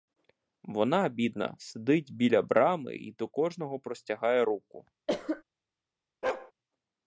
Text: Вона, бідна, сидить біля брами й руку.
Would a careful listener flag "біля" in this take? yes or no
no